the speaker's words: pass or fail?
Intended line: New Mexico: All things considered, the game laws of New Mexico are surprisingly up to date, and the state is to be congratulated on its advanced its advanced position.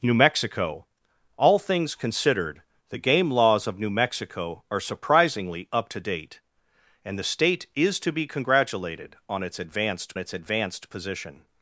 pass